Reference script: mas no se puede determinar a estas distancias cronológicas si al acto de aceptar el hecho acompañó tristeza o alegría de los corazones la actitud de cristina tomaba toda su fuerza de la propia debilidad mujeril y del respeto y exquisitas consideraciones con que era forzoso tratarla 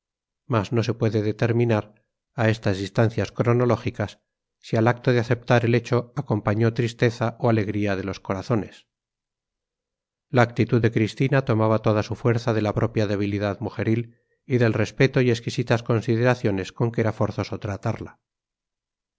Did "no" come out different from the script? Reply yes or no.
no